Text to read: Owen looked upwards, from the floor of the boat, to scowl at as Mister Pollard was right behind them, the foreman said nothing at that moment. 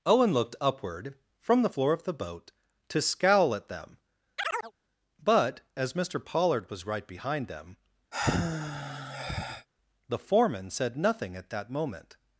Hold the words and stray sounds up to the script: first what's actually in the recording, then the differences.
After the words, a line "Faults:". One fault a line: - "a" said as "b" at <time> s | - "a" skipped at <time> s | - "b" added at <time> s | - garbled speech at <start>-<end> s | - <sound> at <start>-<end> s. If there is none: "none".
Owen looked upward, from the floor of the boat, to scowl at them, but, as Mister Pollard was right behind them, the foreman said nothing at that moment.
Faults:
- "upwards" said as "upward" at 0.6 s
- "them but" added at 3.7 s
- chirp at 4.4-4.7 s
- sigh at 8.1-9.7 s